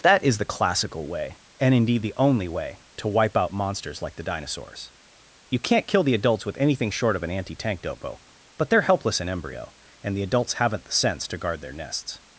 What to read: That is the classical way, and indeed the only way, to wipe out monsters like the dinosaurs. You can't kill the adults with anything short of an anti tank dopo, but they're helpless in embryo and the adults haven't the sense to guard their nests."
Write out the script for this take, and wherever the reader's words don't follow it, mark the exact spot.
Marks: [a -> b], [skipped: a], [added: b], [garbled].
That is the classical way, and indeed the only way, to wipe out monsters like the dinosaurs. You can't kill the adults with anything short of an anti tank dopo, but they're helpless in embryo and the adults haven't the sense to guard their nests."